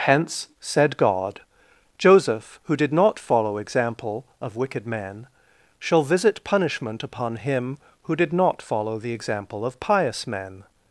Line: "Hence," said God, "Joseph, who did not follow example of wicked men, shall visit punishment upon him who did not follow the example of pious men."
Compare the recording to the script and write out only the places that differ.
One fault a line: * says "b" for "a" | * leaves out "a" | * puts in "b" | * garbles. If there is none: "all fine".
all fine